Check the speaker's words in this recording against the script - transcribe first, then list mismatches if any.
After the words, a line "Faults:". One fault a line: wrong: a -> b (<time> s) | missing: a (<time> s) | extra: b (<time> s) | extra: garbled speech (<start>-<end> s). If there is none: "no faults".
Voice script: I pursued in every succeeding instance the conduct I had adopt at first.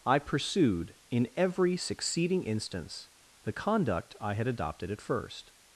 I pursued in every succeeding instance the conduct I had adopted at first.
Faults:
wrong: adopt -> adopted (4.5 s)